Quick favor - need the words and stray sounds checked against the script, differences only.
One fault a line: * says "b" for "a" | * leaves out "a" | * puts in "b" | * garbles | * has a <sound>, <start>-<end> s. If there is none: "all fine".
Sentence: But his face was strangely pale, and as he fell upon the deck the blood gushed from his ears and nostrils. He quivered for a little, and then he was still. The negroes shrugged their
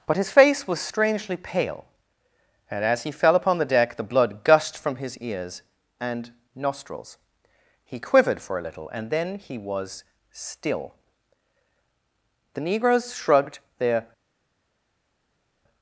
all fine